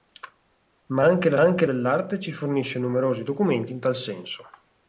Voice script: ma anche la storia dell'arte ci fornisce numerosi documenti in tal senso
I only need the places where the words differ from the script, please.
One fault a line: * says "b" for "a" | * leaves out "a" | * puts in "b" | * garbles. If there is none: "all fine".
* says "anche" for "storia"